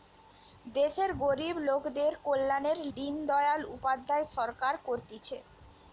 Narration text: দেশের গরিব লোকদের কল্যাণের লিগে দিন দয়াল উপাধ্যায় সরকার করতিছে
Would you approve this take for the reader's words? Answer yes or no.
no